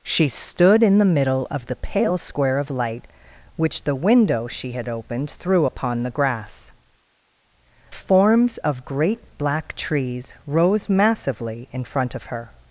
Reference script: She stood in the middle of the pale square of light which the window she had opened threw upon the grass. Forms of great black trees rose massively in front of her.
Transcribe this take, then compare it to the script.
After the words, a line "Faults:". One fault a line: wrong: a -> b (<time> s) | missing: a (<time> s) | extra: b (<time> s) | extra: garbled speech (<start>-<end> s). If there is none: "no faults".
She stood in the middle of the pale square of light which the window she had opened threw upon the grass. Forms of great black trees rose massively in front of her.
Faults:
no faults